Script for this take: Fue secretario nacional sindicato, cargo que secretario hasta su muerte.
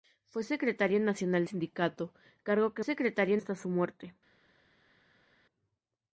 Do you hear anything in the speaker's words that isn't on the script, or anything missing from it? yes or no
no